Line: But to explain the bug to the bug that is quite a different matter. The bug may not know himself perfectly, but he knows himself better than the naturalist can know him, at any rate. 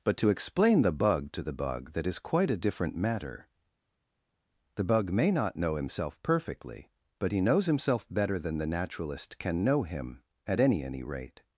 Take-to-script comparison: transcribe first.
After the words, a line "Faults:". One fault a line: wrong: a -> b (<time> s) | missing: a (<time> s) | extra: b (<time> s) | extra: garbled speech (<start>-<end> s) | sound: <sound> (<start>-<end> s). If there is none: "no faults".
But to explain the bug to the bug that is quite a different matter. The bug may not know himself perfectly, but he knows himself better than the naturalist can know him, at any any rate.
Faults:
extra: any (10.8 s)